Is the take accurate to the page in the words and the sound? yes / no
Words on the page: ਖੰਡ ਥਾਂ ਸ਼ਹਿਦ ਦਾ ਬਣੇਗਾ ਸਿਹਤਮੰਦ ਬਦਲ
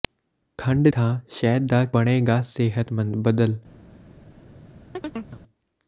no